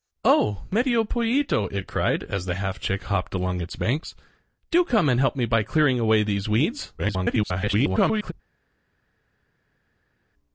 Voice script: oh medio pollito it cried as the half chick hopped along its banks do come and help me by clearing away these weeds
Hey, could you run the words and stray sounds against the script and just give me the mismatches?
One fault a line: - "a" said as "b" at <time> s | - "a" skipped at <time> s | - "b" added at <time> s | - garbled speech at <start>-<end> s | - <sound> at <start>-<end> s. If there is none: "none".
- garbled speech at 7.0-8.3 s